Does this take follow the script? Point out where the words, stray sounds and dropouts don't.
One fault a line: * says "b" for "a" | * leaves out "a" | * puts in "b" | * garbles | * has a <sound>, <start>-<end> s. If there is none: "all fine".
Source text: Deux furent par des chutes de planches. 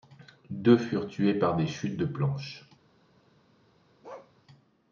* puts in "tués"
* has a bark, 4.0-4.3 s